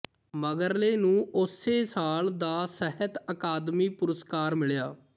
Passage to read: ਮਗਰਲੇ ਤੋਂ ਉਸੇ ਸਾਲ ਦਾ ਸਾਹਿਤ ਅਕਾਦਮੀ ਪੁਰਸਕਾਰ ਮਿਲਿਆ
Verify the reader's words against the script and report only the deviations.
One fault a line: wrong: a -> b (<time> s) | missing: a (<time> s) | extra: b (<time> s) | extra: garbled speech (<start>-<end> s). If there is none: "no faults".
wrong: ਤੋਂ -> ਨੂੰ (1.0 s)